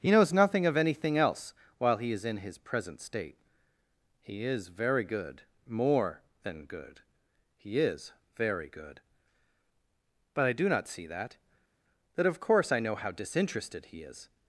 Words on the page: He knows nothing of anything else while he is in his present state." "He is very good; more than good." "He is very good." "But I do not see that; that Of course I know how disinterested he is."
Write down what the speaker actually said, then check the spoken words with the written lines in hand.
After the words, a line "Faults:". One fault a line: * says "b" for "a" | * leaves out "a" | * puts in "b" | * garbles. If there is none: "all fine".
He knows nothing of anything else while he is in his present state." "He is very good; more than good." "He is very good." "But I do not see that; that Of course I know how disinterested he is."
Faults:
all fine